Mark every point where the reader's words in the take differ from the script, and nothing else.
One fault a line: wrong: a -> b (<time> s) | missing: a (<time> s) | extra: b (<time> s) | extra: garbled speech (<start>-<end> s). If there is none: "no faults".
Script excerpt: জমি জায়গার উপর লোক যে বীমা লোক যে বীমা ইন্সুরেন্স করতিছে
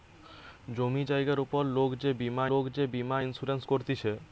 no faults